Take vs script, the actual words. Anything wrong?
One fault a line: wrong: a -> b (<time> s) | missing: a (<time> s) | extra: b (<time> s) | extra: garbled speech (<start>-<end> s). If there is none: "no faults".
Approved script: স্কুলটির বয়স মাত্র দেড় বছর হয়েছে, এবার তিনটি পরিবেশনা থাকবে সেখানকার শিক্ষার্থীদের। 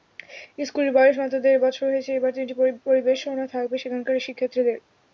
no faults